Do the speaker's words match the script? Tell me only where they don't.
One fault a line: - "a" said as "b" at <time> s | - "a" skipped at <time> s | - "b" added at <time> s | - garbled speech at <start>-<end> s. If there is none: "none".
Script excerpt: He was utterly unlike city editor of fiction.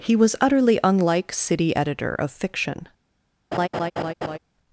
none